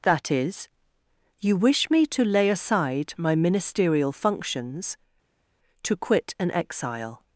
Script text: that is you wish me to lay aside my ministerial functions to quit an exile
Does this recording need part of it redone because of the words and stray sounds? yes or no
no